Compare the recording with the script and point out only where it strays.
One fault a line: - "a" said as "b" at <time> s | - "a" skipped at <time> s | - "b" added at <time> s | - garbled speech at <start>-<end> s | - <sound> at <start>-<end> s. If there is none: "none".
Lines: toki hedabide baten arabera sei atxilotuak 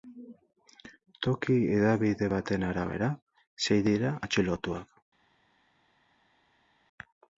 - "dira" added at 3.9 s